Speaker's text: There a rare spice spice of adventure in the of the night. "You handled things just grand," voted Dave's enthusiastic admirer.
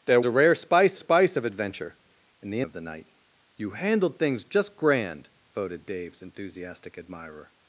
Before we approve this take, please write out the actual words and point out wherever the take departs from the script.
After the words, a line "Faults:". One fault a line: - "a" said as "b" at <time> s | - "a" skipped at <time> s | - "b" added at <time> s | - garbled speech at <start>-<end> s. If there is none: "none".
There a rare spice spice of adventure in the of the night. "You handled things just grand," voted Dave's enthusiastic admirer.
Faults:
none